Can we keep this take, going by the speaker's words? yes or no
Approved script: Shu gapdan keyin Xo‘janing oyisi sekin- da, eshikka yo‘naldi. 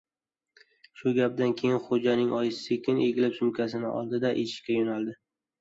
no